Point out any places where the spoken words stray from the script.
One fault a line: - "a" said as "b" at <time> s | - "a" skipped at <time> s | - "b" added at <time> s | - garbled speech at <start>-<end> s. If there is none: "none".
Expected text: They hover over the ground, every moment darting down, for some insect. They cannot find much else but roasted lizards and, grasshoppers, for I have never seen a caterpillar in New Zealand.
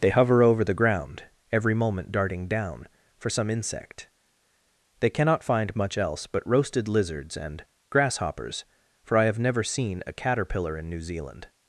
none